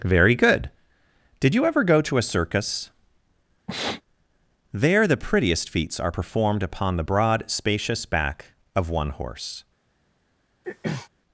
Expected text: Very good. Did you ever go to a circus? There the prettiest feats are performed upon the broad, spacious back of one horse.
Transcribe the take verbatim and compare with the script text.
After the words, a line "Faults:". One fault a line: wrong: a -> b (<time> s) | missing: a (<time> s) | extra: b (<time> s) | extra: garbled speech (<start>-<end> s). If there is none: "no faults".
Very good. Did you ever go to a circus? There the prettiest feats are performed upon the broad, spacious back of one horse.
Faults:
no faults